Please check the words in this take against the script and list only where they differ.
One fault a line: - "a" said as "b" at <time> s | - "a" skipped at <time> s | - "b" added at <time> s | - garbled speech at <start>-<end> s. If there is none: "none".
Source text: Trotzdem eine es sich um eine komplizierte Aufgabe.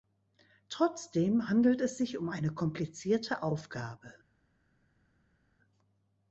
- "eine" said as "handelt" at 1.5 s